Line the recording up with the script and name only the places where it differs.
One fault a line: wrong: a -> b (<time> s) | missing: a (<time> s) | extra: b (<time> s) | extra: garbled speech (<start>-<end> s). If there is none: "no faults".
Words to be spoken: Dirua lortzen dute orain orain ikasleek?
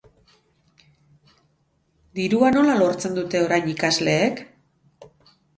extra: nola (2.6 s)
missing: orain (3.7 s)